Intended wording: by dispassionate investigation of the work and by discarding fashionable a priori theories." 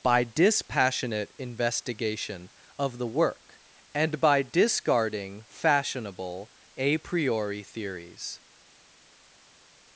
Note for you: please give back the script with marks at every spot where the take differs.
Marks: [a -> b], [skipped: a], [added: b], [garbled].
by dispassionate investigation of the work and by discarding fashionable a priori theories."